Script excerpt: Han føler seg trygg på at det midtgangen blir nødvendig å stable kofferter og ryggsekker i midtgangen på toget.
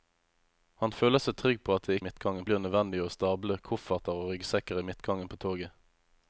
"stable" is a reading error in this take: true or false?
false